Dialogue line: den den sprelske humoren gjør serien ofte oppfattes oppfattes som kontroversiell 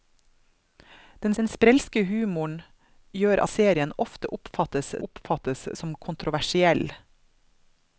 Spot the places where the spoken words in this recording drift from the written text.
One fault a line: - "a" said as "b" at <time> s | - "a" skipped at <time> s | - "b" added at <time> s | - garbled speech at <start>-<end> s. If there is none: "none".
none